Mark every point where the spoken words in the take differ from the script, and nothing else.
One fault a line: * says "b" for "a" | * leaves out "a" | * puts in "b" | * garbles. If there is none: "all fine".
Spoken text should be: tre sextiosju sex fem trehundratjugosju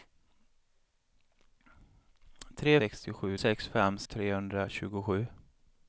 all fine